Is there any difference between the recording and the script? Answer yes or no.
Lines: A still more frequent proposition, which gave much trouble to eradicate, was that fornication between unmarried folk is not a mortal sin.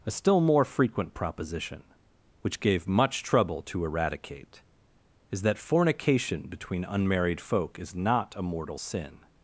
yes